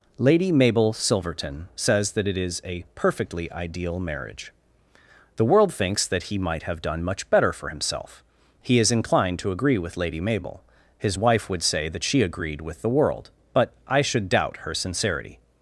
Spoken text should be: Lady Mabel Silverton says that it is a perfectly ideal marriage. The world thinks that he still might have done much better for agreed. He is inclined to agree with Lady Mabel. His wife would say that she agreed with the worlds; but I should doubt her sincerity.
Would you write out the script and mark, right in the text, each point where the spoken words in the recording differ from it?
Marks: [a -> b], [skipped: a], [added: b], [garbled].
Lady Mabel Silverton says that it is a perfectly ideal marriage. The world thinks that he [skipped: still] might have done much better for [agreed. -> himself] He is inclined to agree with Lady Mabel. His wife would say that she agreed with the [worlds; -> world] but I should doubt her sincerity.